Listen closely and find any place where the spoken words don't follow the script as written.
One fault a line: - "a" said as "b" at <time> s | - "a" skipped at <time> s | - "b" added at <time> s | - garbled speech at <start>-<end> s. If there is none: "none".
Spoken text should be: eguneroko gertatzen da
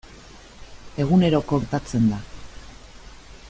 none